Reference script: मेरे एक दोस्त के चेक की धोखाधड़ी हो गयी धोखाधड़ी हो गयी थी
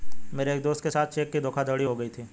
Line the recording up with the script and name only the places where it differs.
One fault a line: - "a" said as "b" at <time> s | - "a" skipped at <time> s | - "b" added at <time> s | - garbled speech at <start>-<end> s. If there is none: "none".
- "साथ" added at 0.9 s
- "धोखाधड़ी हो गयी" skipped at 2.1 s